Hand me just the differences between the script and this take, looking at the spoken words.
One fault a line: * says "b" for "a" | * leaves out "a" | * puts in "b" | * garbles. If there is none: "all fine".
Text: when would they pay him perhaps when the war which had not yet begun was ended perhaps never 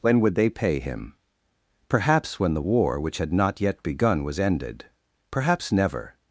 all fine